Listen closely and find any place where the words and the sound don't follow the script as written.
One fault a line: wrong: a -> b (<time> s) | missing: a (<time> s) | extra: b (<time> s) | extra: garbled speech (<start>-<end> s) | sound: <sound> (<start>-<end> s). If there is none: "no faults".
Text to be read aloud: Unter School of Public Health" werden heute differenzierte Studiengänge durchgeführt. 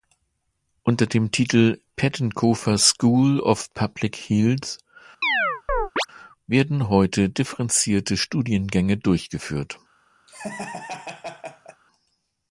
extra: dem Titel Pettenkofer (1.1 s)
sound: chirp (5.2-6.1 s)
sound: laugh (10.3-11.8 s)